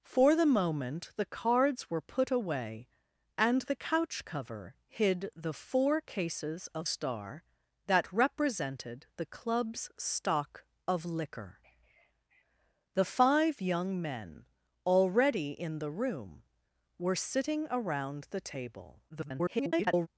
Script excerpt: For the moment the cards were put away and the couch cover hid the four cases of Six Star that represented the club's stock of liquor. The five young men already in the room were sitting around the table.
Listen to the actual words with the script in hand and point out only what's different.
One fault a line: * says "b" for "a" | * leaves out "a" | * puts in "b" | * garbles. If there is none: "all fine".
* leaves out "Six"
* garbles